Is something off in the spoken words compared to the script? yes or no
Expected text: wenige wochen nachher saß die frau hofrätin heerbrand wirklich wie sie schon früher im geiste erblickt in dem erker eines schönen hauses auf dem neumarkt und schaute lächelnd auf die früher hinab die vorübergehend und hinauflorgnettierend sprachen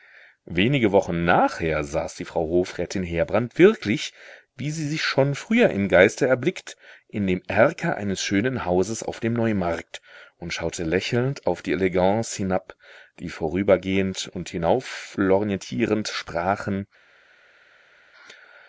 yes